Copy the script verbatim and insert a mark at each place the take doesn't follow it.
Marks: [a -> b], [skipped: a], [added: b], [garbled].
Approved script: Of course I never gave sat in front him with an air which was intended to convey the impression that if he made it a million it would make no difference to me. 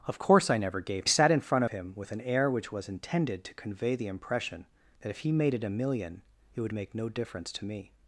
Of course I never gave sat in front him with an air which was intended to convey the impression that if he made it a million it would make no difference to me.